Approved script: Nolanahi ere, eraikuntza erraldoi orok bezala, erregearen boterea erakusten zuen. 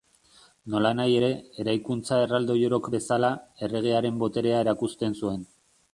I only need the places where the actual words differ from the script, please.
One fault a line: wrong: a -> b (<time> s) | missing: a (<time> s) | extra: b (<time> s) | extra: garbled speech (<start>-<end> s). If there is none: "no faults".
no faults